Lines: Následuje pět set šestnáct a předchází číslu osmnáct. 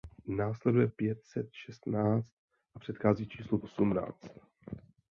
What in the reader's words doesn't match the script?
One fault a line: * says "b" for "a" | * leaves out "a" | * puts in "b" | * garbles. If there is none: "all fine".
all fine